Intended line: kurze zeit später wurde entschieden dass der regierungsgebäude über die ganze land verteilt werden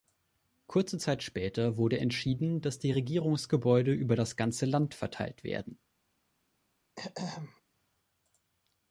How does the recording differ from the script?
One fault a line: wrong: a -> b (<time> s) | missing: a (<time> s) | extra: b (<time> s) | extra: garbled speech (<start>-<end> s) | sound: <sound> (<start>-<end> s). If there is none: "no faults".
wrong: der -> die (2.8 s)
wrong: die -> das (4.1 s)
sound: throat clearing (7.0-7.6 s)